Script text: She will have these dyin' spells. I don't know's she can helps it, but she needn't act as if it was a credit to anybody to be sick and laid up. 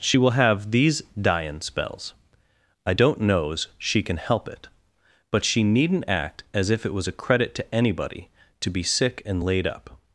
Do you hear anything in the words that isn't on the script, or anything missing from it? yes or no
yes